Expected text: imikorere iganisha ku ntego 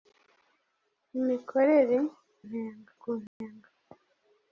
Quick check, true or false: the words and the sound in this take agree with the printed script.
false